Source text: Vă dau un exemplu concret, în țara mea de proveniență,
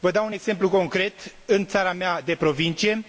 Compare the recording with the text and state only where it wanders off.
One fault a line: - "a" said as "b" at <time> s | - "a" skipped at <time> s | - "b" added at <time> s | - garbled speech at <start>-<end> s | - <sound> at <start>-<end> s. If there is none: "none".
none